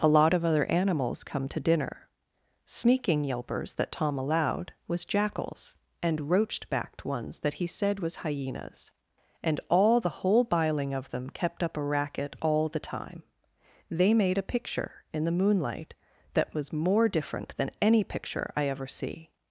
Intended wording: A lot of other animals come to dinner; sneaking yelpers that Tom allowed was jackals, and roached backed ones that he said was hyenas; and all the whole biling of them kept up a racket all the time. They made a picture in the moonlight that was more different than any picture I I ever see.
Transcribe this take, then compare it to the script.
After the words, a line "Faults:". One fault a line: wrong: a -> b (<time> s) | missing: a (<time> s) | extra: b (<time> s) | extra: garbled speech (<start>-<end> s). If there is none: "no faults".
A lot of other animals come to dinner; sneaking yelpers that Tom allowed was jackals, and roached backed ones that he said was hyenas; and all the whole biling of them kept up a racket all the time. They made a picture in the moonlight that was more different than any picture I ever see.
Faults:
missing: I (18.7 s)